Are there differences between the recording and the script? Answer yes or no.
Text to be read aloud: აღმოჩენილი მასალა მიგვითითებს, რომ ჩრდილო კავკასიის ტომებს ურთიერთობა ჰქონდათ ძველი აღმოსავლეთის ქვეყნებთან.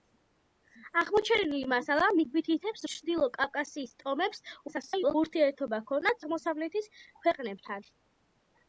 yes